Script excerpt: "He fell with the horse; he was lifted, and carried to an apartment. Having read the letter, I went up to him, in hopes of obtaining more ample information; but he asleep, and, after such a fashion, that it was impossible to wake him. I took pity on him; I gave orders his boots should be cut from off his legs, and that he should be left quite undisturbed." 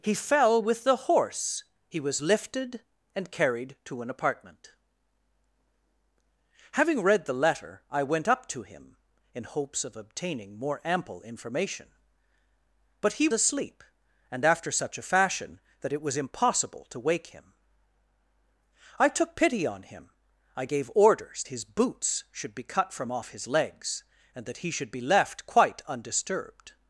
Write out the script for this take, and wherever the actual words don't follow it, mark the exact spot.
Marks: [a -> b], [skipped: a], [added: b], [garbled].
"He fell with the horse; he was lifted, and carried to an apartment. Having read the letter, I went up to him, in hopes of obtaining more ample information; but he asleep, and, after such a fashion, that it was impossible to wake him. I took pity on him; I gave orders his boots should be cut from off his legs, and that he should be left quite undisturbed."